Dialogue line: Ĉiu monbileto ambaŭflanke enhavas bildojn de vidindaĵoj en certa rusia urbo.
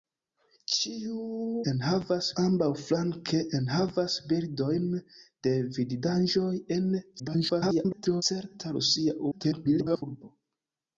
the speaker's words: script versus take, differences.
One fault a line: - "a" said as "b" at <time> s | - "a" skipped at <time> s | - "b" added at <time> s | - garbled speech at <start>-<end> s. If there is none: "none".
- "monbileto" said as "enhavas" at 1.7 s
- garbled speech at 7.2-8.2 s
- garbled speech at 9.3-10.0 s